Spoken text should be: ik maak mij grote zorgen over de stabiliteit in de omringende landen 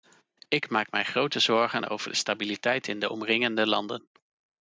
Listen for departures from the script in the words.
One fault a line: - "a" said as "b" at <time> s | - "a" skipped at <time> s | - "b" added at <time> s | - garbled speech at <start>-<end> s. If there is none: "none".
none